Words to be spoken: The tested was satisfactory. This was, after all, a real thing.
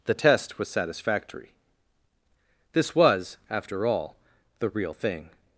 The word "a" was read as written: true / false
false